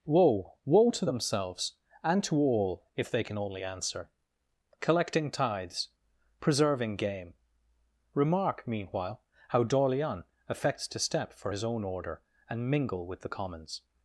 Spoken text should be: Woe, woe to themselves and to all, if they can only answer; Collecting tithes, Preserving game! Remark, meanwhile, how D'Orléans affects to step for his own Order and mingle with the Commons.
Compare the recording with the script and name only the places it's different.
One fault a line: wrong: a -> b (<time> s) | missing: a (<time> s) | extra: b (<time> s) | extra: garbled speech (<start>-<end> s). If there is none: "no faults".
no faults